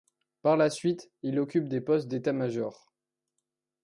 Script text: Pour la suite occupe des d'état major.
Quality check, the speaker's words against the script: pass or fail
fail